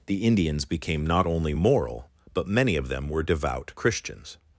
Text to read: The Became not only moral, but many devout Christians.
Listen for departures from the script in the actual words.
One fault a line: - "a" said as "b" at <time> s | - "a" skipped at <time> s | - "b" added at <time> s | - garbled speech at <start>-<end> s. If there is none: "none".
- "Indians" added at 0.2 s
- "of them were" added at 2.8 s